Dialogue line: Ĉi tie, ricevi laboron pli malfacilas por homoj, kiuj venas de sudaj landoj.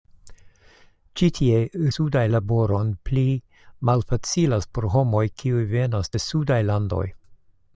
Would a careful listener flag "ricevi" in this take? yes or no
yes